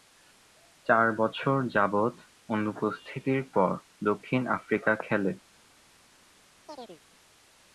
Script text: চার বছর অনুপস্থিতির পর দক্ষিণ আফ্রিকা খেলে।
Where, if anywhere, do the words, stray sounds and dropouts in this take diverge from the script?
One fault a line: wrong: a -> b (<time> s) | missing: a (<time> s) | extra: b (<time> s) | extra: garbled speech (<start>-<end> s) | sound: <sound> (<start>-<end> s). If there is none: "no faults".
extra: যাবৎ (1.8 s)
sound: chirp (6.7-7.0 s)